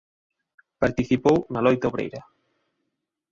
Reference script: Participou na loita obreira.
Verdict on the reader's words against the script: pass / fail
pass